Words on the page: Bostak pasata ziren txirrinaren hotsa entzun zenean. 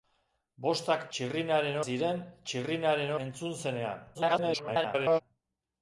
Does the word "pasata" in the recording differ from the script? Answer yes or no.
yes